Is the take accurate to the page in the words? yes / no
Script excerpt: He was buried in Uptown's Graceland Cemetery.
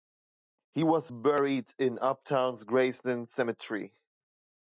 yes